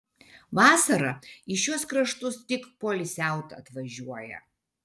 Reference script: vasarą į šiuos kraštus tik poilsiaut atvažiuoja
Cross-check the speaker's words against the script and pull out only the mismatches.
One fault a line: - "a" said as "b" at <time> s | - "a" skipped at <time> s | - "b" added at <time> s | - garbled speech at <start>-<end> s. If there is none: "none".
none